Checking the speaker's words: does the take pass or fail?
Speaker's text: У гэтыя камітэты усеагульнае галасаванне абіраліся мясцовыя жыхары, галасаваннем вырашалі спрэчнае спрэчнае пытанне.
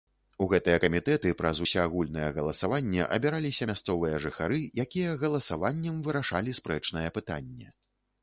fail